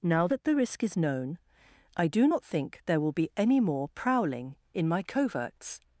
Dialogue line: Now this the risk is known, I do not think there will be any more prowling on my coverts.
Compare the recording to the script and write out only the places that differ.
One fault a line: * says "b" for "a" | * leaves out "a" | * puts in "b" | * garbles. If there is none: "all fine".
* says "that" for "this"
* says "in" for "on"